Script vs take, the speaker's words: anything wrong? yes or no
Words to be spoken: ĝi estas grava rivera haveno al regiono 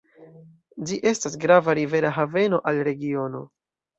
no